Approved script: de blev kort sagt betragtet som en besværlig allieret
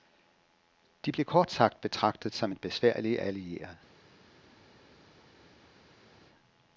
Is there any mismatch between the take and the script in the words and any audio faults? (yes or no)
no